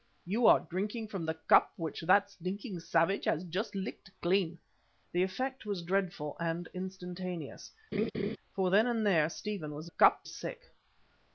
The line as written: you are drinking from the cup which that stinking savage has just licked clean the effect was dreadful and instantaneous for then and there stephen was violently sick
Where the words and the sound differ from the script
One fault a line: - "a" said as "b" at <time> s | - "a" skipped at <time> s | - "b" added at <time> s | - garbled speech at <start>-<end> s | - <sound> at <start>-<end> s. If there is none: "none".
- laugh at 7.9-8.4 s
- "violently" said as "cup" at 9.8 s